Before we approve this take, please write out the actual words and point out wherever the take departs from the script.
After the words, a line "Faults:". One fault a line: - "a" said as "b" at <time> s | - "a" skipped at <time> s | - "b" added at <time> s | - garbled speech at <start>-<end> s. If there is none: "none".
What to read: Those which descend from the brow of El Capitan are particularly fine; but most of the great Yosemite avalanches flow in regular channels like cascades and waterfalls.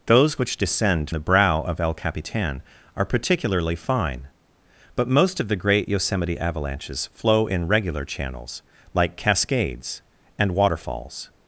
Those which descend the brow of El Capitan are particularly fine; but most of the great Yosemite avalanches flow in regular channels like cascades and waterfalls.
Faults:
- "from" skipped at 1.1 s